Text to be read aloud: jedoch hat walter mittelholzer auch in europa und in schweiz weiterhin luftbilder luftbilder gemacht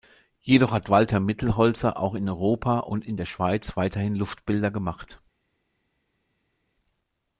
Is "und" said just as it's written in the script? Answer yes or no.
yes